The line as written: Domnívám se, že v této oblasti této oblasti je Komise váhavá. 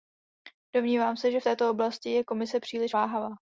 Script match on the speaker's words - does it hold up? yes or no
no